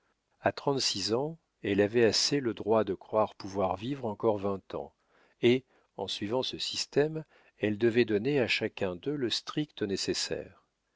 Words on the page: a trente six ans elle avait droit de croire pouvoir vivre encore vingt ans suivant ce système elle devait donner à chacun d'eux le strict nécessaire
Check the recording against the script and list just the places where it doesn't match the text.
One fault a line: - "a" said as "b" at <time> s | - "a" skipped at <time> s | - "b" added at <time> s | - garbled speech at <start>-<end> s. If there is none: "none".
- "assez le" added at 2.0 s
- "et en" added at 5.4 s